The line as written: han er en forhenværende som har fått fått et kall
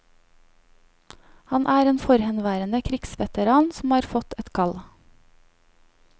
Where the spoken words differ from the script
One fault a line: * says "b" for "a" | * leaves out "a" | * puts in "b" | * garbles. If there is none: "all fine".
* puts in "krigsveteran"
* leaves out "fått"